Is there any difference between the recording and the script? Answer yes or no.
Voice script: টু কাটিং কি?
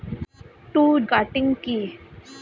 no